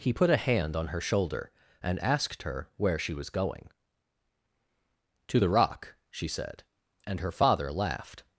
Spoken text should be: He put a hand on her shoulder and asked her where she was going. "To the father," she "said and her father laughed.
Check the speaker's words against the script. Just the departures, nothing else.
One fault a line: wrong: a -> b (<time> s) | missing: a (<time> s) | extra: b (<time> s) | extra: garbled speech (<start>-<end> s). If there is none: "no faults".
wrong: father -> rock (5.5 s)